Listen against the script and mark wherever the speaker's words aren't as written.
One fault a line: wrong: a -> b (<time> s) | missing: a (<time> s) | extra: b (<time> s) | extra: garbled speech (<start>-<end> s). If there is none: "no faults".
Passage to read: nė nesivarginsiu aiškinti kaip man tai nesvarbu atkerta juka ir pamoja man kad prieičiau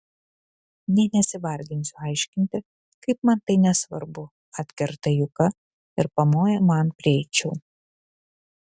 missing: kad (6.9 s)